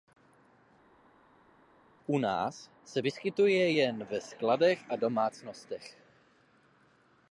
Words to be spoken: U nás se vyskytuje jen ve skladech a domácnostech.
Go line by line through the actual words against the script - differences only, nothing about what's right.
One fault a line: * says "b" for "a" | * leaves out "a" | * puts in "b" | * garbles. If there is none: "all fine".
all fine